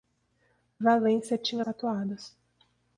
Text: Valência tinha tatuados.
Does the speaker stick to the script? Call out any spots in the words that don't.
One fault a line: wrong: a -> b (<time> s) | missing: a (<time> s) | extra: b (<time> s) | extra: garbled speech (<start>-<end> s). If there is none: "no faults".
no faults